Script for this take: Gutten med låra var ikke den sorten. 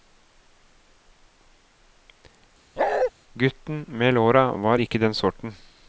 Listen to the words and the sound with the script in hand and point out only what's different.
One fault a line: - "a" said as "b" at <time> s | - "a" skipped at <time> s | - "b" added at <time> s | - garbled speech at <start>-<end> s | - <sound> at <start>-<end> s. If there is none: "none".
- bark at 2.8-3.1 s